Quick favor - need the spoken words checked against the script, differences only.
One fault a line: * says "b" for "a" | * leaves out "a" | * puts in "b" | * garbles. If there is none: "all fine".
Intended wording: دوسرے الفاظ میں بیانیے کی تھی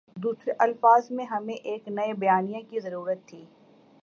* puts in "ہمیں ایک نئے"
* puts in "ضرورت"